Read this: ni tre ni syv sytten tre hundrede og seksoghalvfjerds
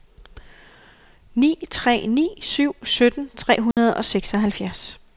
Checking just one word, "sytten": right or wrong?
right